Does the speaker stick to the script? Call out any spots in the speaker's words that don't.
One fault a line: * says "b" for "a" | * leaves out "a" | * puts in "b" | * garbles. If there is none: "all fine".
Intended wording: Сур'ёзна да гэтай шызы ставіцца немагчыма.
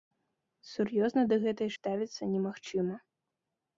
* leaves out "шызы"